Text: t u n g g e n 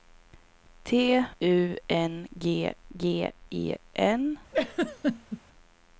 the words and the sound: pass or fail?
fail